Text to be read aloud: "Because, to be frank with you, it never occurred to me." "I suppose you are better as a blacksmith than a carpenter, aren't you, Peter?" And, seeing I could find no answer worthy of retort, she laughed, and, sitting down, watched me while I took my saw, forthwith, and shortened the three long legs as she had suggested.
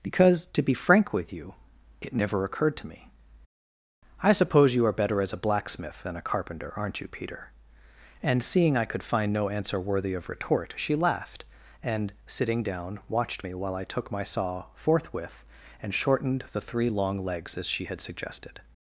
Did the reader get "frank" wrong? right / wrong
right